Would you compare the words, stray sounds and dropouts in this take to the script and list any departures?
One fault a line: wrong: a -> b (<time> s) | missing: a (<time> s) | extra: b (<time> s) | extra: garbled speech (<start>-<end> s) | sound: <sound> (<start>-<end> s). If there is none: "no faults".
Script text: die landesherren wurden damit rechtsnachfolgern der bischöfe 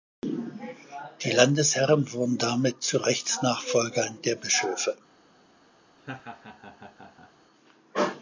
extra: zu (2.8 s)
sound: laugh (6.0-7.3 s)